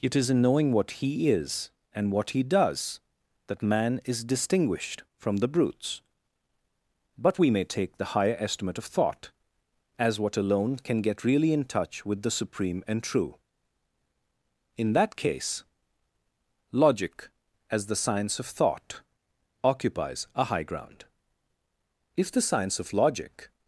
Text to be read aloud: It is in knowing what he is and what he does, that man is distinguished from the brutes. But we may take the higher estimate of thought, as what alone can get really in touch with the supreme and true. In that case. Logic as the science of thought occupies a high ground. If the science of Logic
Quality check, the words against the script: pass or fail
pass